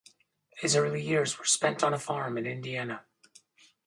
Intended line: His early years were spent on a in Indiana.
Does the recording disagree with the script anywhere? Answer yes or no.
yes